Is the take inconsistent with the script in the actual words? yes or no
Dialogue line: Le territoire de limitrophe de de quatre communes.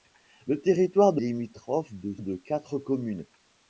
no